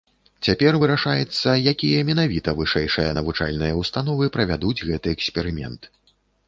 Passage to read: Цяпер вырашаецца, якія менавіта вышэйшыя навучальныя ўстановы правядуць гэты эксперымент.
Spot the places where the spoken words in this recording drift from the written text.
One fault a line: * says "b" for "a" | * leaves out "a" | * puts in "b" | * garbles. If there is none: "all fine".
all fine